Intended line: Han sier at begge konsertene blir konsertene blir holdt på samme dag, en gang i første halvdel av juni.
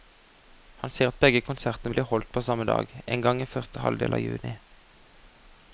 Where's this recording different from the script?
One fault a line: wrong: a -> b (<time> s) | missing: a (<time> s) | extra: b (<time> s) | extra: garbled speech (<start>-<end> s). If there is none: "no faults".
missing: konsertene blir (2.1 s)